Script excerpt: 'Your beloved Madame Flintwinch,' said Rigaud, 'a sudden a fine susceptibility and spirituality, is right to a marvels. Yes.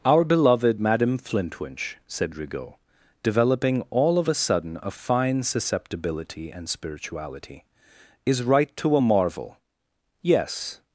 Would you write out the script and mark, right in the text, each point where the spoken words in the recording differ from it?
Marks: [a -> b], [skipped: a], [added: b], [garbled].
['Your -> Our] beloved Madame Flintwinch,' said Rigaud, [added: developing all of] 'a sudden a fine susceptibility and spirituality, is right to a [marvels. -> marvel] Yes.